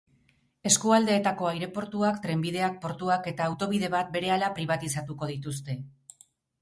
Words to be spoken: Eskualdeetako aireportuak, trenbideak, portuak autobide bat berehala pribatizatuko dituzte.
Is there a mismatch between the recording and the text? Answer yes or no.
yes